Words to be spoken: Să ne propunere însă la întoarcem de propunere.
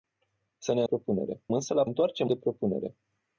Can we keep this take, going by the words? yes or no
yes